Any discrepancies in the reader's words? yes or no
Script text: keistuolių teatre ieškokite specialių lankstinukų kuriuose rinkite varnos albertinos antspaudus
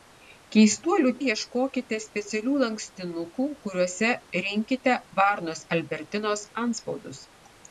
yes